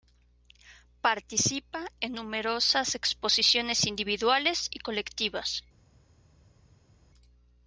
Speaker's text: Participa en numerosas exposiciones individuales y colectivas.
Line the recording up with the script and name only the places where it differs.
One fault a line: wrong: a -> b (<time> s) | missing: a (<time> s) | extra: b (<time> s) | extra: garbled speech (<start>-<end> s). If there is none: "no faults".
no faults